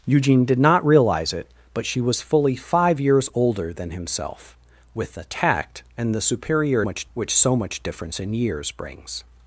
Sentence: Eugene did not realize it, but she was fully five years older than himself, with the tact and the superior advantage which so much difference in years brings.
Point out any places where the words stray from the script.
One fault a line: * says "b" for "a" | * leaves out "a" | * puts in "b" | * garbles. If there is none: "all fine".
* says "much" for "advantage"